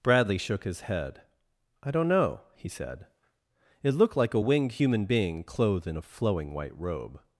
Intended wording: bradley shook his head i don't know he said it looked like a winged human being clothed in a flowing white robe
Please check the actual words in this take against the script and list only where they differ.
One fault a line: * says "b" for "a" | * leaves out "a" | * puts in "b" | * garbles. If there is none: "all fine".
all fine